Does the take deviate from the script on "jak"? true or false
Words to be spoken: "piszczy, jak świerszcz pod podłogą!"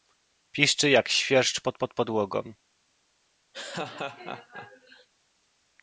false